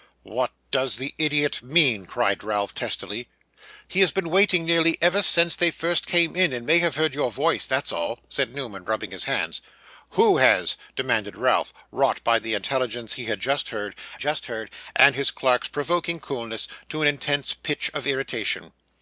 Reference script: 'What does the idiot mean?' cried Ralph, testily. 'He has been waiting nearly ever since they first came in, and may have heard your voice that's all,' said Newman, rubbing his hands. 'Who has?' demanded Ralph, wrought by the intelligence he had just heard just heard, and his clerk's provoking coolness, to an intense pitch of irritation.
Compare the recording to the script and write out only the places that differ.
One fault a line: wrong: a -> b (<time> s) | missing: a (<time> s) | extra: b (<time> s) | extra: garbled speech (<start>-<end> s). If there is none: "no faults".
no faults